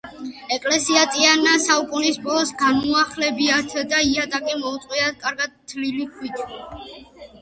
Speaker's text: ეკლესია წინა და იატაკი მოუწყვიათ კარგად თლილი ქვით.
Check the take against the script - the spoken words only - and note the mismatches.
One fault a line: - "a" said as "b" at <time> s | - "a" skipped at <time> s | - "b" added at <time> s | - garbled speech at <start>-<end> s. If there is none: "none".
- "საუკუნის ბოლოს განუახლებიათ" added at 1.6 s